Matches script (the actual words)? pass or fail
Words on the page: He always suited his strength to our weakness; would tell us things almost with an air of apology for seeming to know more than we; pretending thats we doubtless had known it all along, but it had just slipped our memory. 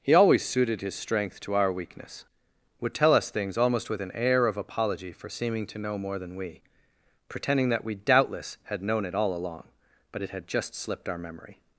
fail